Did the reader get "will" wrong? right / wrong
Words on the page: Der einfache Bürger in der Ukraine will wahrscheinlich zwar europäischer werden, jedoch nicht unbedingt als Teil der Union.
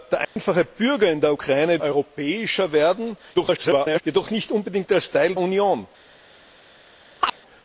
wrong